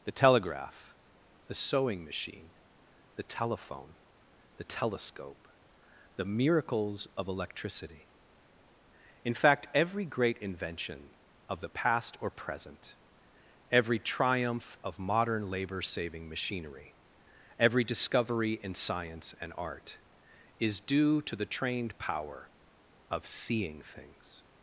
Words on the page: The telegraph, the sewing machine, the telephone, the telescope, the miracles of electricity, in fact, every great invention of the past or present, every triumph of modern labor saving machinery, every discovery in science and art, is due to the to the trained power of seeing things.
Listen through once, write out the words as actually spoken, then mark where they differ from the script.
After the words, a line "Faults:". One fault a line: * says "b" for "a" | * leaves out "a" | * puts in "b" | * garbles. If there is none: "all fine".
The telegraph, the sewing machine, the telephone, the telescope, the miracles of electricity, in fact, every great invention of the past or present, every triumph of modern labor saving machinery, every discovery in science and art, is due to the trained power of seeing things.
Faults:
* leaves out "to the"